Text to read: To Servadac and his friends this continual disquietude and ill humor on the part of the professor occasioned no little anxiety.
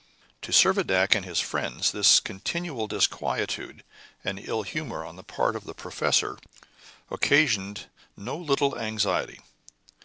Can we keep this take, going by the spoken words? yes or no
yes